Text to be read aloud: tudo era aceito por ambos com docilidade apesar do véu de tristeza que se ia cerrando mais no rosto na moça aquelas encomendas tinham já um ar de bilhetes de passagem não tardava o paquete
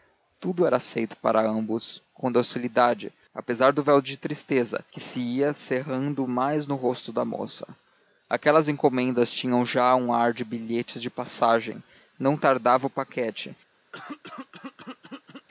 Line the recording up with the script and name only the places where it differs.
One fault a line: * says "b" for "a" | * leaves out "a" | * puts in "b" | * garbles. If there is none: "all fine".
* says "da" for "na"